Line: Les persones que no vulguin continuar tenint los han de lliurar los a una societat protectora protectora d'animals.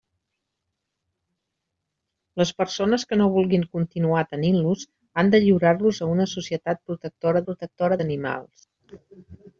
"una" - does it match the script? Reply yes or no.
yes